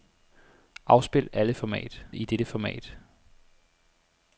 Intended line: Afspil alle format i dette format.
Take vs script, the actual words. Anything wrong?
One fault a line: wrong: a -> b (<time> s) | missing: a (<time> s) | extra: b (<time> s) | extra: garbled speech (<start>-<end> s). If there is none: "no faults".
no faults